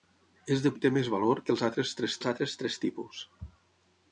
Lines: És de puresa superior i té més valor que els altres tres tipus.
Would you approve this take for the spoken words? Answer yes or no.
no